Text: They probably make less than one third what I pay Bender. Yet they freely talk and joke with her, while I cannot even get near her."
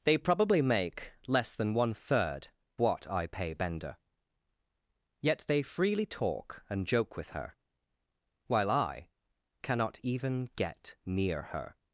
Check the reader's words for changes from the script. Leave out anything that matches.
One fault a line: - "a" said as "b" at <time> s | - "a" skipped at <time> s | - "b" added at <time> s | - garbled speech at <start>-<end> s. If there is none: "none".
none